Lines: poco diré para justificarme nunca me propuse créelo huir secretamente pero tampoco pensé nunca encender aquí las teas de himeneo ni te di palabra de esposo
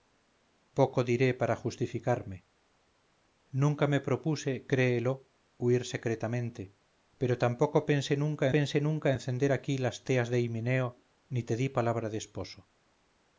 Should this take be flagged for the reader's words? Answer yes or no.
yes